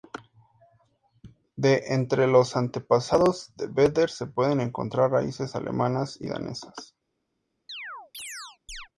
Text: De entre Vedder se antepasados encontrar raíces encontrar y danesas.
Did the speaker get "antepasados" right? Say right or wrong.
wrong